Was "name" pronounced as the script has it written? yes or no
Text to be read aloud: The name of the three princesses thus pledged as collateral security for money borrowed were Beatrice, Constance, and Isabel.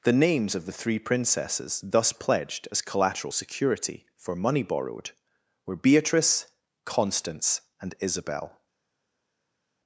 no